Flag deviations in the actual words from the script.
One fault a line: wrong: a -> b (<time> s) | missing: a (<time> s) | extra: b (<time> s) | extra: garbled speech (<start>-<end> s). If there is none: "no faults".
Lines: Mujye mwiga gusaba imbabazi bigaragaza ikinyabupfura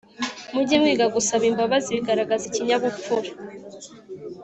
no faults